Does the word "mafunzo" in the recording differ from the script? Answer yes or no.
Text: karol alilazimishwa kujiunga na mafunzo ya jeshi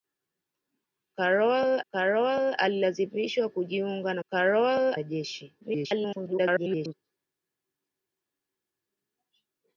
yes